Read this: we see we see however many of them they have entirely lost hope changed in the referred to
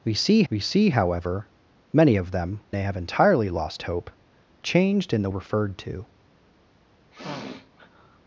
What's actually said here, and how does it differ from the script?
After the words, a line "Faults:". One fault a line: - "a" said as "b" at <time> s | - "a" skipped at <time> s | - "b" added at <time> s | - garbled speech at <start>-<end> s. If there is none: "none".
we see we see however many of them they have entirely lost hope changed in the referred to
Faults:
none